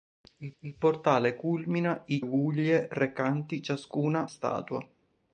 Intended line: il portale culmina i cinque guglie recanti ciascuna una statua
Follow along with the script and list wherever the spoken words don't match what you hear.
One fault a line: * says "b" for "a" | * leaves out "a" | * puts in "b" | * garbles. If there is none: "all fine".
* puts in "il"
* leaves out "cinque"
* leaves out "una"